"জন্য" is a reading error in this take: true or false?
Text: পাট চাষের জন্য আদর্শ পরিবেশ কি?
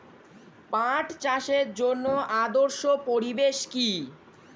false